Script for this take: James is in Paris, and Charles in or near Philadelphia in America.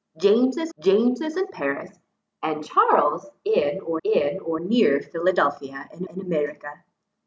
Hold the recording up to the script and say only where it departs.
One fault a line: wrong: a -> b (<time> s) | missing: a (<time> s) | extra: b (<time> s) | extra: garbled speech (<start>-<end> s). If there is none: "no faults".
extra: james is (0.8 s)
extra: in or (4.0 s)
extra: in (6.1 s)